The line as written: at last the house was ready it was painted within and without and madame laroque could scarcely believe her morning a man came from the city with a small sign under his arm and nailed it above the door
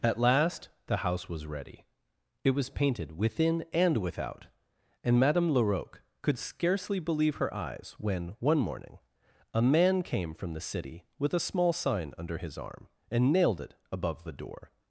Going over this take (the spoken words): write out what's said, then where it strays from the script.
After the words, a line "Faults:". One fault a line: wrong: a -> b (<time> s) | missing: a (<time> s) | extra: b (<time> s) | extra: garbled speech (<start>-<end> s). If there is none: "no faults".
at last the house was ready it was painted within and without and madame laroque could scarcely believe her eyes when one morning a man came from the city with a small sign under his arm and nailed it above the door
Faults:
extra: eyes when one (7.5 s)